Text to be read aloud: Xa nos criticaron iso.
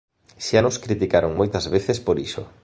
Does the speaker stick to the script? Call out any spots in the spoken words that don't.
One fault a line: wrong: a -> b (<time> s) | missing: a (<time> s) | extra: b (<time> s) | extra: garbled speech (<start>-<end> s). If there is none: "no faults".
extra: moitas veces por (1.4 s)